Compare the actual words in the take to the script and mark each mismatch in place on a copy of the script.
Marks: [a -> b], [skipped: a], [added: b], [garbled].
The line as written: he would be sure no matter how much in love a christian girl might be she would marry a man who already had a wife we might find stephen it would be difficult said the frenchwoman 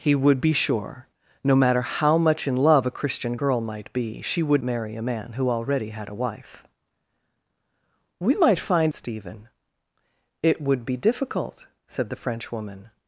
he would be sure no matter how much in love a christian girl might be she would marry a man who already had a wife we might find stephen it would be difficult said the frenchwoman